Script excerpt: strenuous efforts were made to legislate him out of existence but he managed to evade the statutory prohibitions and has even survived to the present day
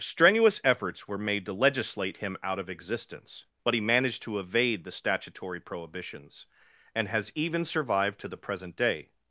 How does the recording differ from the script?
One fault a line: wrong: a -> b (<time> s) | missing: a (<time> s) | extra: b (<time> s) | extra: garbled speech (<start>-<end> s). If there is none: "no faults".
no faults